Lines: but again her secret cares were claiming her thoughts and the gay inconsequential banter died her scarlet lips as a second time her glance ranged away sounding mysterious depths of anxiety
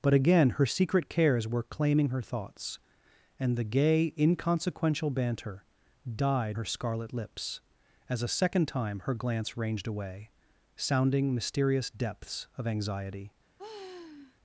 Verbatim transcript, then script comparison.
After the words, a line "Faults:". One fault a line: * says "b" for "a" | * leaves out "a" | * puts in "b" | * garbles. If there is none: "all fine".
but again her secret cares were claiming her thoughts and the gay inconsequential banter died her scarlet lips as a second time her glance ranged away sounding mysterious depths of anxiety
Faults:
all fine